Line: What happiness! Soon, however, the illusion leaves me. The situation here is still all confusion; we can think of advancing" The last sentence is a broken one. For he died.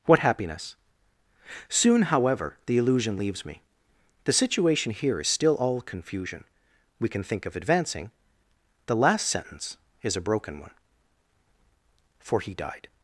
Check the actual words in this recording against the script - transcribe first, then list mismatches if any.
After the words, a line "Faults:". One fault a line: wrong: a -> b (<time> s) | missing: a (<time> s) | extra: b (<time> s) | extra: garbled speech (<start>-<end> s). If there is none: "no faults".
What happiness! Soon, however, the illusion leaves me. The situation here is still all confusion; we can think of advancing" The last sentence is a broken one. For he died.
Faults:
no faults